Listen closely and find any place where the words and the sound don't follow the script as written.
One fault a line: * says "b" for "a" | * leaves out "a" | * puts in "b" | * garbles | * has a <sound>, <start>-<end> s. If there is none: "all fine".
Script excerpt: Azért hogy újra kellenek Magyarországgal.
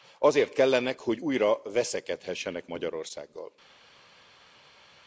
* puts in "kellenek"
* says "veszekedhessenek" for "kellenek"